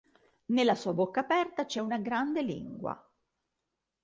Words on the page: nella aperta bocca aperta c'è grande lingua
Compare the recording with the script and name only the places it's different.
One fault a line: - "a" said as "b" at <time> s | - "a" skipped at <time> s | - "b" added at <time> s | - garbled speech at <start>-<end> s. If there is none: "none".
- "aperta" said as "sua" at 0.7 s
- "una" added at 1.8 s